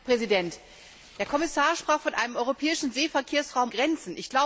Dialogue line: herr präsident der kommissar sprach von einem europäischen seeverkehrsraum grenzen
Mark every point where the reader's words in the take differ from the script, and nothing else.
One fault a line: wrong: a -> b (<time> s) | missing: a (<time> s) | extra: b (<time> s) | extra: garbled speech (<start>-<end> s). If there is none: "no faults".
no faults